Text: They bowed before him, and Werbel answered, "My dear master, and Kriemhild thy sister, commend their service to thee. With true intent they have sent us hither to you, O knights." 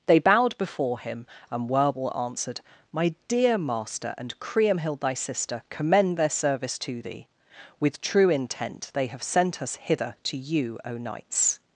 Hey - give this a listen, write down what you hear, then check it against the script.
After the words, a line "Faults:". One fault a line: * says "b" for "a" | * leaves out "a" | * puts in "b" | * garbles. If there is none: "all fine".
They bowed before him, and Werbel answered, "My dear master, and Kriemhild thy sister, commend their service to thee. With true intent they have sent us hither to you, O knights."
Faults:
all fine